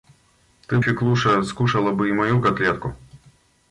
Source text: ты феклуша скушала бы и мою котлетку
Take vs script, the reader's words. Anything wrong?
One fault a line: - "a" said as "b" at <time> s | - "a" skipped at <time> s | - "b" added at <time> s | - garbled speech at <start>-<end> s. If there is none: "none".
none